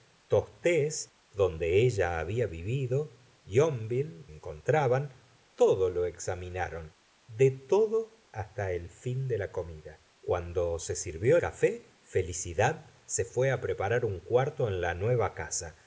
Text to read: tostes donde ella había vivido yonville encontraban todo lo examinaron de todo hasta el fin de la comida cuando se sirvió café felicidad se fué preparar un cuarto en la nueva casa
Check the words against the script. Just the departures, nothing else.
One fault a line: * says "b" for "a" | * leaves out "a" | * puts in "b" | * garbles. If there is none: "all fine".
all fine